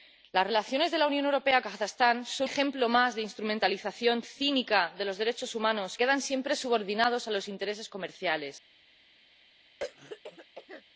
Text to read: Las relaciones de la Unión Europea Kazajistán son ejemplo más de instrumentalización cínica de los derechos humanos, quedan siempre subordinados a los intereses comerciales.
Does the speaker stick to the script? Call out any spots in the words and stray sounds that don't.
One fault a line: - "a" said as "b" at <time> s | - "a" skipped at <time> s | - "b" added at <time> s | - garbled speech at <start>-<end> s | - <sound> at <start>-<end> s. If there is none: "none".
- throat clearing at 9.8-10.8 s